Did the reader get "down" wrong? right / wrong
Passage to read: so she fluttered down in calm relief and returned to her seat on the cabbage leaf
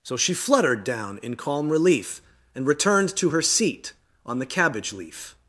right